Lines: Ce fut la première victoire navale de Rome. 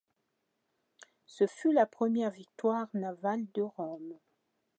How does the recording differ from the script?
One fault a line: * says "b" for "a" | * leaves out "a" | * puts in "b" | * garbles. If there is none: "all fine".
all fine